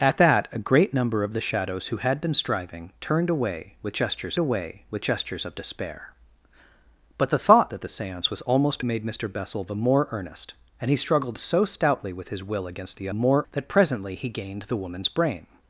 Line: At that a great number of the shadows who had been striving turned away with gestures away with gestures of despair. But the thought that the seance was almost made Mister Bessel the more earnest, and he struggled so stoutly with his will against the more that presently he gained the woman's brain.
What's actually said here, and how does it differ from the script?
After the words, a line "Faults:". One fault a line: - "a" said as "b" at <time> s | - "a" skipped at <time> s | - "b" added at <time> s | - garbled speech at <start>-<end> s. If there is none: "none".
At that a great number of the shadows who had been striving turned away with gestures away with gestures of despair. But the thought that the seance was almost made Mister Bessel the more earnest, and he struggled so stoutly with his will against the more that presently he gained the woman's brain.
Faults:
none